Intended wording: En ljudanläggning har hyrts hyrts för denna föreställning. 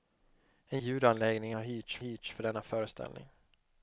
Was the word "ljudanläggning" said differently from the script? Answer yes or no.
no